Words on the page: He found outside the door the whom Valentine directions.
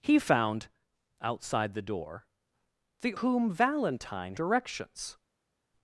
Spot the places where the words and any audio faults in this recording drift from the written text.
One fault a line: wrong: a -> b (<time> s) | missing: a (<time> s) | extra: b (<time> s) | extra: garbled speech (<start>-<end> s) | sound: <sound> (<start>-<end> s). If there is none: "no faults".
no faults